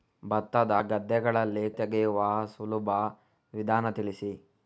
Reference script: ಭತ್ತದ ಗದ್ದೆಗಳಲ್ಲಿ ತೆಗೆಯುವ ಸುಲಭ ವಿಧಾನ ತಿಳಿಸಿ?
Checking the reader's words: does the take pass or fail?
pass